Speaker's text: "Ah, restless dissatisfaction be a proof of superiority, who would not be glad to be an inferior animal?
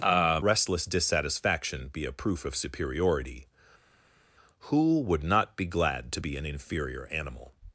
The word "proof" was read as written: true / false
true